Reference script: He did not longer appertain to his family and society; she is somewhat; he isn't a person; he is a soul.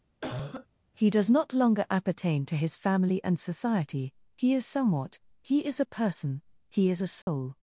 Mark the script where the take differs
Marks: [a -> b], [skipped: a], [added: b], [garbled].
He [did -> does] not longer appertain to his family and society; [she -> he] is somewhat; he [isn't -> is] a person; he is a soul.